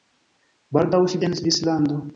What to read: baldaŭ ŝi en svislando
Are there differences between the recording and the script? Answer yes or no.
no